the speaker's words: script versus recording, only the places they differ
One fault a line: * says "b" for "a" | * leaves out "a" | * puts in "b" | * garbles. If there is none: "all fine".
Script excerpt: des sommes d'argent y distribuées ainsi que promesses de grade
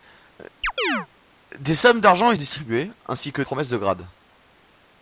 all fine